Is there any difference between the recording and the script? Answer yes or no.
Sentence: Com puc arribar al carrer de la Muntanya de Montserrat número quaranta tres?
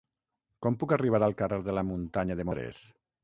yes